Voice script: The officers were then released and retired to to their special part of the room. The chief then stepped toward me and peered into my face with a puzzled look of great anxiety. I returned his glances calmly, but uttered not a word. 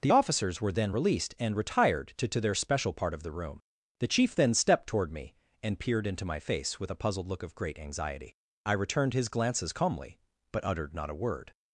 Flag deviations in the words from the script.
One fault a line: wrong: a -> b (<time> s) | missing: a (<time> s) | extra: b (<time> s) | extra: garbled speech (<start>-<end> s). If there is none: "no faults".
no faults